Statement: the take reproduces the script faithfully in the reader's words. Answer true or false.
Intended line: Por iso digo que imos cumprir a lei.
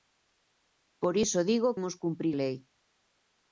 false